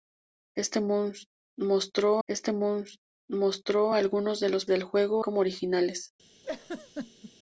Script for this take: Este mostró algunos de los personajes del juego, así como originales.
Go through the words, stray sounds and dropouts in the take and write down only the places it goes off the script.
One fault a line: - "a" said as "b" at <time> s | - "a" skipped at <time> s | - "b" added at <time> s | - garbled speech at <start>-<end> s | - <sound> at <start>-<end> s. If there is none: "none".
- "este mostró" added at 2.3 s
- "personajes" skipped at 4.7 s
- "así" skipped at 5.2 s
- laugh at 6.4-7.3 s